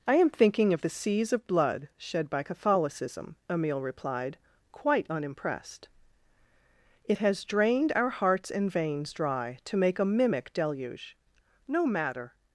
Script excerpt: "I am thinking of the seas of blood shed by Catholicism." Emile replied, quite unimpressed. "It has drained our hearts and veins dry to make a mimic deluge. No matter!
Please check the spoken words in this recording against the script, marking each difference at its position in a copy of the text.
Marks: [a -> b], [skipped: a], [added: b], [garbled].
"I am thinking of the seas of blood shed by Catholicism." Emile replied, quite unimpressed. "It has drained our hearts and veins dry to make a mimic deluge. No matter!